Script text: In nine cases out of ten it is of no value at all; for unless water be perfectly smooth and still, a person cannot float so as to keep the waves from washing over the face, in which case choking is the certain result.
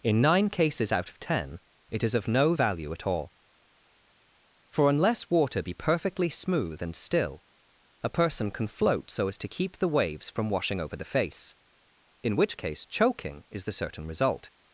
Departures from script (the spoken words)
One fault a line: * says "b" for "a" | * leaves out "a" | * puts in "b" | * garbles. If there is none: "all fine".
* says "can" for "cannot"